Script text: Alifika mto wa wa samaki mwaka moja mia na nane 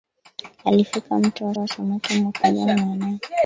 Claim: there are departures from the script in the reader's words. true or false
false